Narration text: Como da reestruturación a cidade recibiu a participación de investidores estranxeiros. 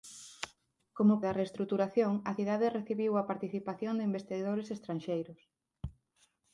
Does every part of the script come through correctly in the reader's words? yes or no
yes